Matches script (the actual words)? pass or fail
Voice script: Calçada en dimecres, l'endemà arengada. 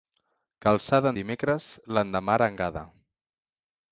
pass